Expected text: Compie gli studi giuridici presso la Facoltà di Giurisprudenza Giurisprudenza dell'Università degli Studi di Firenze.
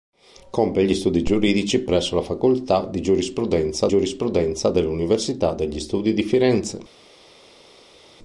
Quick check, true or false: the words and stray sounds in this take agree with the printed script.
true